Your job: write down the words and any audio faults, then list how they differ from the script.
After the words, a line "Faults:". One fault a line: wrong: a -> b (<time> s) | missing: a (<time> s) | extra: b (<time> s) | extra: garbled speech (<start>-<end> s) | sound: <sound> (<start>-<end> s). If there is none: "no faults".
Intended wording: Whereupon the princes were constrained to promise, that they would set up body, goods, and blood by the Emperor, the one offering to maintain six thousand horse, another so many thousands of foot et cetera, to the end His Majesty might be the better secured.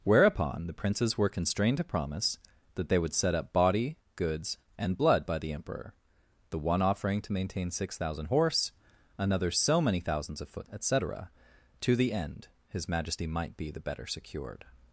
Whereupon the princes were constrained to promise, that they would set up body, goods, and blood by the Emperor, the one offering to maintain six thousand horse, another so many thousands of foot et cetera, to the end His Majesty might be the better secured.
Faults:
no faults